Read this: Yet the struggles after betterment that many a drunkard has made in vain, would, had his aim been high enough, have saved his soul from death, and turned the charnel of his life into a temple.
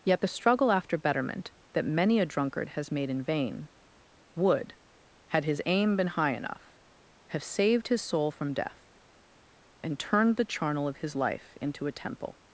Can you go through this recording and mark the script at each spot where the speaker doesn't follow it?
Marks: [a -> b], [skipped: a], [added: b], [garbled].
Yet the [struggles -> struggle] after betterment that many a drunkard has made in vain, would, had his aim been high enough, have saved his soul from death, and turned the charnel of his life into a temple.